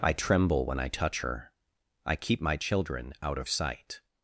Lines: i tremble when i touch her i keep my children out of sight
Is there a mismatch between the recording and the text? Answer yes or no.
no